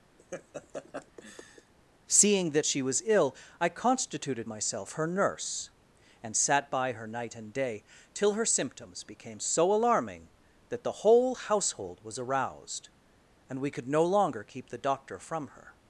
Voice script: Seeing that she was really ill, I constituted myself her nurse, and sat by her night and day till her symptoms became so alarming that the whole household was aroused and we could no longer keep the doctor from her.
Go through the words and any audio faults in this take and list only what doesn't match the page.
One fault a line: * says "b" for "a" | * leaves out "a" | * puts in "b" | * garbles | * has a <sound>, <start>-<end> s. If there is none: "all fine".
* has a laugh, 0.2-1.7 s
* leaves out "really"